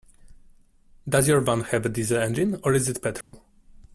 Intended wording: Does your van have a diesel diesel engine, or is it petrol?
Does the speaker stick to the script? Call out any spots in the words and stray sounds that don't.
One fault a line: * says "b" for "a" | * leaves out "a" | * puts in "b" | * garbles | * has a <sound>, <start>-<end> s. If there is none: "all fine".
* leaves out "diesel"
* has a dropout, 3.2-3.3 s